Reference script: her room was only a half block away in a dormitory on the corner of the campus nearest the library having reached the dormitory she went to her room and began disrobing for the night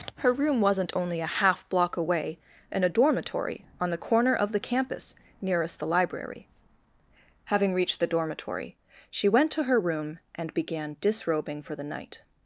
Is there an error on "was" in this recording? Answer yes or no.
yes